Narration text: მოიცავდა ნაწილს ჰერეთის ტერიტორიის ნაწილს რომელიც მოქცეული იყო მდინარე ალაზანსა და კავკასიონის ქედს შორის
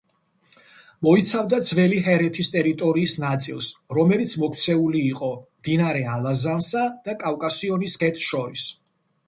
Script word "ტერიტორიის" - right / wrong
right